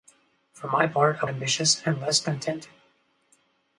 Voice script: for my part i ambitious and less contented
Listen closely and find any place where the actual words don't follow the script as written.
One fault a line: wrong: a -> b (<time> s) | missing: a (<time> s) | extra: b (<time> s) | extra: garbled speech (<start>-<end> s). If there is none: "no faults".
no faults